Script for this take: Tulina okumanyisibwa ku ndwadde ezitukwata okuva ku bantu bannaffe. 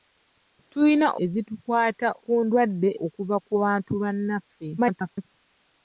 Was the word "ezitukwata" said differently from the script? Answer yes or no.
yes